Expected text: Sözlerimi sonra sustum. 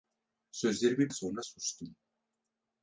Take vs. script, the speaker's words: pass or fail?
pass